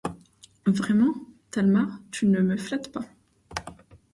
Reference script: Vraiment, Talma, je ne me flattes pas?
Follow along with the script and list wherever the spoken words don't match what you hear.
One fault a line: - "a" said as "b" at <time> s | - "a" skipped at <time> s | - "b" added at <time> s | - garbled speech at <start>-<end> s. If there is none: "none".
- "je" said as "tu" at 2.1 s